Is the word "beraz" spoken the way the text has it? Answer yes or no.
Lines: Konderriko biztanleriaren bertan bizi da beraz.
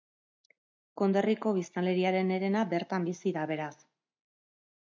yes